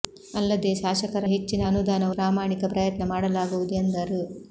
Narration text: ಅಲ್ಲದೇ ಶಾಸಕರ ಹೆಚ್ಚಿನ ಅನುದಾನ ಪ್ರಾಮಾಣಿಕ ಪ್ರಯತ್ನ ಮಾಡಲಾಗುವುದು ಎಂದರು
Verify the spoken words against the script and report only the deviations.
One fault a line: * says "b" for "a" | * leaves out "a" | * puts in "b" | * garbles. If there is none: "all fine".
all fine